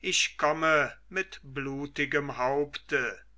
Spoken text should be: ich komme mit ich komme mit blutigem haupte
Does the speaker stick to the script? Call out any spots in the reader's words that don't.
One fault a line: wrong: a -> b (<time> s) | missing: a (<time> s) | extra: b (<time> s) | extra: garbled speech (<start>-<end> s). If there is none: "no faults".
missing: ich komme mit (1.4 s)